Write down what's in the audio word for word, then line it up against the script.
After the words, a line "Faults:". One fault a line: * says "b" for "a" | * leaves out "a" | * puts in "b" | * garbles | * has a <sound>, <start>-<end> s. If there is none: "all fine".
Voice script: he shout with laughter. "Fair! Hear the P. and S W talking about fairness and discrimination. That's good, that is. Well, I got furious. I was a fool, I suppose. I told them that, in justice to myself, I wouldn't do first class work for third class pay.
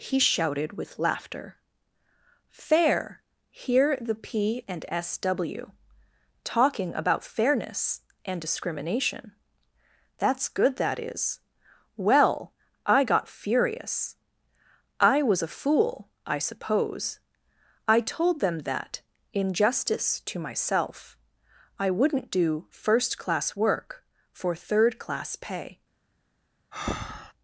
he shouted with laughter. "Fair! Hear the P. and S W talking about fairness and discrimination. That's good, that is. Well, I got furious. I was a fool, I suppose. I told them that, in justice to myself, I wouldn't do first class work for third class pay.
Faults:
* says "shouted" for "shout"
* has a breath, 26.7-27.3 s